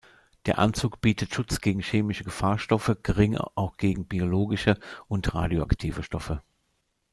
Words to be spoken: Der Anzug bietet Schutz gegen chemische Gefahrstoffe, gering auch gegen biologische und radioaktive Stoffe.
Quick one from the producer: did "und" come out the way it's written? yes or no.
yes